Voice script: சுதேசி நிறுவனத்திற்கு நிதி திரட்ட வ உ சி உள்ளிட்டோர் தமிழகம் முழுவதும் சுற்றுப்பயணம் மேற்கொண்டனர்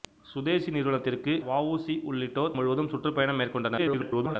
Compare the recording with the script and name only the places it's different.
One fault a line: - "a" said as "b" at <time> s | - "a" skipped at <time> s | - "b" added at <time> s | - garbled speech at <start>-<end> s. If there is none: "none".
- "நிதி திரட்ட" skipped at 1.3 s
- "தமிழகம்" skipped at 2.5 s
- garbled speech at 3.8-4.4 s